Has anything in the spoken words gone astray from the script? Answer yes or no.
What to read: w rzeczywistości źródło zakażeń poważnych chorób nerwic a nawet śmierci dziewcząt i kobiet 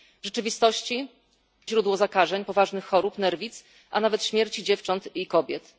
no